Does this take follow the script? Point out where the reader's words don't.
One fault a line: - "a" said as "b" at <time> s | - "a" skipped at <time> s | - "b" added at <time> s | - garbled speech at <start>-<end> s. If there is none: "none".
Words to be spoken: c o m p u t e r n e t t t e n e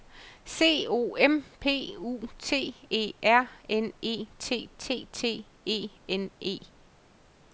none